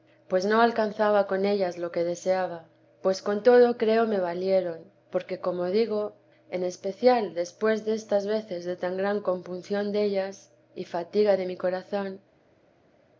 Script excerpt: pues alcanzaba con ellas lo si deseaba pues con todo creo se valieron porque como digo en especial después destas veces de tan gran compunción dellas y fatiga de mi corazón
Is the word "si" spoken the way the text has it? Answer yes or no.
no